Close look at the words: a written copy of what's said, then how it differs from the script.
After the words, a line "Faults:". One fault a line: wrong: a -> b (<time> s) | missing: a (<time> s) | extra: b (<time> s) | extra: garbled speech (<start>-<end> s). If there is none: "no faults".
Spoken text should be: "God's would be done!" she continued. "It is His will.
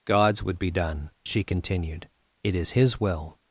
"God's would be done!" she continued. "It is His will.
Faults:
no faults